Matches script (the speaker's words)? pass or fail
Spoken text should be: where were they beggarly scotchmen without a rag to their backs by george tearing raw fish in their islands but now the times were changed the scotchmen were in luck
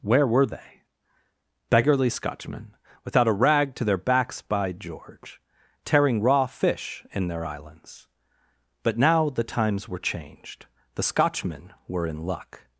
pass